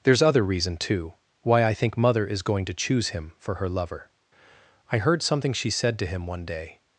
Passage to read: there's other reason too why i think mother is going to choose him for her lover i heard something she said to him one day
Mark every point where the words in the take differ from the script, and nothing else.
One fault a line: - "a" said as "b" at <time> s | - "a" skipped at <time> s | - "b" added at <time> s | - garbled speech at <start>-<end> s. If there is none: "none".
none